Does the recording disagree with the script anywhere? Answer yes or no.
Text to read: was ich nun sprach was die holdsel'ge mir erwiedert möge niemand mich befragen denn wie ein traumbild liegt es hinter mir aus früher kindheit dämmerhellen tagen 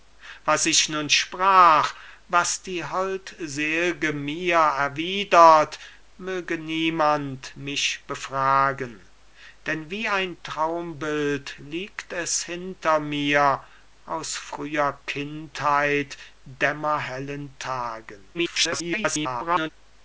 yes